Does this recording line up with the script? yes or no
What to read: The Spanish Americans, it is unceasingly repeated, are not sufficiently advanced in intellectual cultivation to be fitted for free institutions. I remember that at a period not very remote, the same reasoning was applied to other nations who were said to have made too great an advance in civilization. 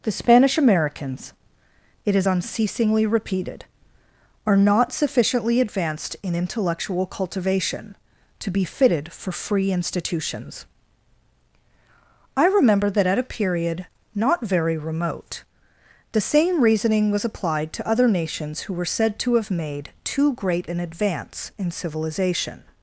yes